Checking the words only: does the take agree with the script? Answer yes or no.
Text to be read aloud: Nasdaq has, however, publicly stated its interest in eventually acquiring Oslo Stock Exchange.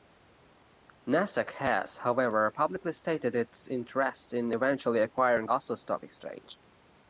yes